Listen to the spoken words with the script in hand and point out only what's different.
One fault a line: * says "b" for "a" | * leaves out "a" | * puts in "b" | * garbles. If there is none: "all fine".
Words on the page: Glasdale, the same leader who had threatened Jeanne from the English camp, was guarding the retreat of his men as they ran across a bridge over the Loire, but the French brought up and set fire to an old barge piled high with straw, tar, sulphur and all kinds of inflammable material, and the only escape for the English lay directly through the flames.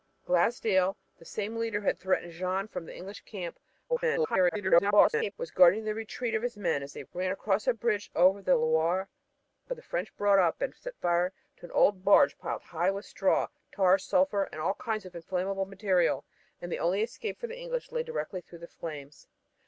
* garbles